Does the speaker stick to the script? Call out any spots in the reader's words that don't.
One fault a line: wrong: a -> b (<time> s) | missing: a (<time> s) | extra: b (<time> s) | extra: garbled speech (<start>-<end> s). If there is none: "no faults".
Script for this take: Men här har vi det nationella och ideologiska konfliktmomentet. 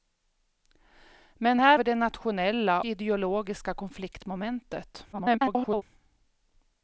missing: har (1.8 s)
missing: och (2.8 s)
extra: garbled speech (5.1-5.8 s)